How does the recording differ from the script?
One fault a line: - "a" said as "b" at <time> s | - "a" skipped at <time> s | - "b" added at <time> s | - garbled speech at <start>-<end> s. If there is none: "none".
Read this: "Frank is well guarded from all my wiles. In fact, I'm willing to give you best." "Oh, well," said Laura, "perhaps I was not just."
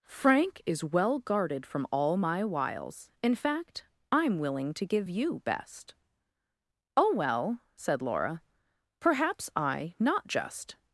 - "was" skipped at 9.9 s